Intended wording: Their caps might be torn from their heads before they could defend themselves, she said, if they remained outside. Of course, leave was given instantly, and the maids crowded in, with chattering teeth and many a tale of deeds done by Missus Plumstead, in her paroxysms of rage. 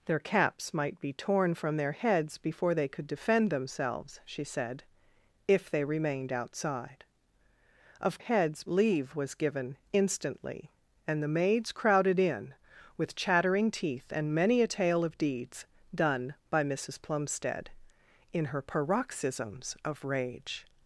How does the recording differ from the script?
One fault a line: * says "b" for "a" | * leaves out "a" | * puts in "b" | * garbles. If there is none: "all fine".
* says "heads" for "course"